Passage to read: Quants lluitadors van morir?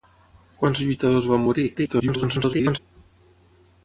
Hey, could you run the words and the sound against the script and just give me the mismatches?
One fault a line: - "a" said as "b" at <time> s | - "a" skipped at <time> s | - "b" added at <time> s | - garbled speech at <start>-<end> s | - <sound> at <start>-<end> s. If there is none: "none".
- garbled speech at 1.7-2.8 s